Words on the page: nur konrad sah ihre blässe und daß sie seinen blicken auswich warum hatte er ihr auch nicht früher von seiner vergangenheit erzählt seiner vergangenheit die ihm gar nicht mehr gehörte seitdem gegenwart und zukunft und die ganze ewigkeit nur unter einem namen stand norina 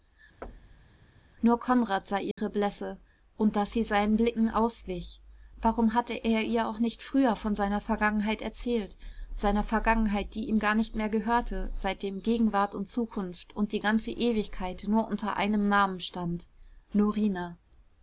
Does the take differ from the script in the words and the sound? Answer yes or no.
yes